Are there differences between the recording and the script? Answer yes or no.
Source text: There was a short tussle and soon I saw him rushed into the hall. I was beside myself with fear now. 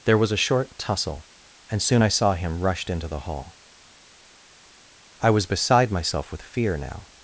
no